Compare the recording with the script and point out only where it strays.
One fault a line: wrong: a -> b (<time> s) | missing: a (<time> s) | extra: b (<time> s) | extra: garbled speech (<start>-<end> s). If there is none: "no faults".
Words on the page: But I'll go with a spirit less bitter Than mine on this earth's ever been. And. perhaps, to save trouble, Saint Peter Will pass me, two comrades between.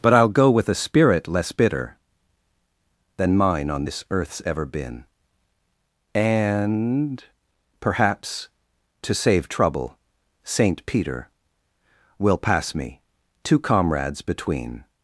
no faults